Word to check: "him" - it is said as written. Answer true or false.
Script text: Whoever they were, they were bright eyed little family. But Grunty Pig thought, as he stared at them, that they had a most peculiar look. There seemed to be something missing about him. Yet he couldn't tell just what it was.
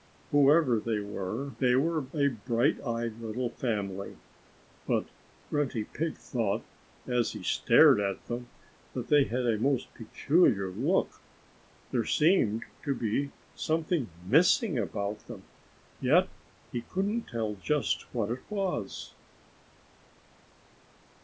false